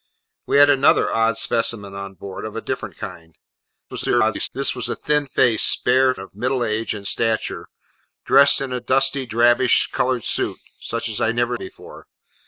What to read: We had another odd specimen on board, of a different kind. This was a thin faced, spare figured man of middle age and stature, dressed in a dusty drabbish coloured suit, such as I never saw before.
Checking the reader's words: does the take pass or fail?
fail